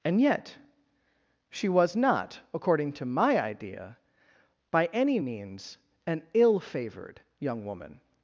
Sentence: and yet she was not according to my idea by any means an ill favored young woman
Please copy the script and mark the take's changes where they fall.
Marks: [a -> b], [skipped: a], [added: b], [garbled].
and yet she was not according to my idea by any means an ill favored young woman